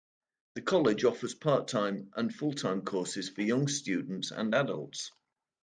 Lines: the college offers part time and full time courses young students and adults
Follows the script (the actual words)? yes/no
no